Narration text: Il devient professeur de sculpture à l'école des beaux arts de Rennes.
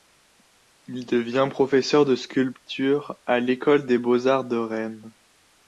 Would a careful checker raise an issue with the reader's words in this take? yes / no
no